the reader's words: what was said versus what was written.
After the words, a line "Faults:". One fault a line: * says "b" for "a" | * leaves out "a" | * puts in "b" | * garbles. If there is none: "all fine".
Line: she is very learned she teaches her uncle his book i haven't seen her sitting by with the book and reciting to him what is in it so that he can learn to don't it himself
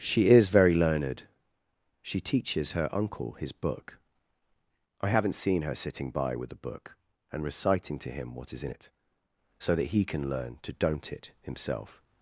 she is very learned she teaches her uncle his book i haven't seen her sitting by with the book and reciting to him what is in it so that he can learn to don't it himself
Faults:
all fine